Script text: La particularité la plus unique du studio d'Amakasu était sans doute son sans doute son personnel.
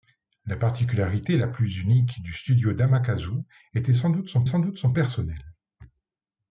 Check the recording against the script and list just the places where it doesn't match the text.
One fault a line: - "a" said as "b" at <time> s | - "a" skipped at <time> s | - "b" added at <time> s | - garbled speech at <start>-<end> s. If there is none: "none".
none